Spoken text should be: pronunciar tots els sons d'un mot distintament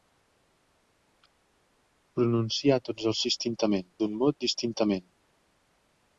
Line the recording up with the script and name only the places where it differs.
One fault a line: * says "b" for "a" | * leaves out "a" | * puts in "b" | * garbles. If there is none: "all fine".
* says "distintament" for "sons"